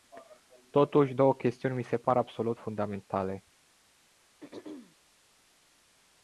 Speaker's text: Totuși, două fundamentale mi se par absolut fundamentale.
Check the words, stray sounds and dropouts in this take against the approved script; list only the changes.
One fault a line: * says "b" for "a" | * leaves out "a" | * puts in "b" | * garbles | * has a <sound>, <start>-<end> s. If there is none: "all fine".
* says "chestiuni" for "fundamentale"
* has a throat clearing, 4.4-5.0 s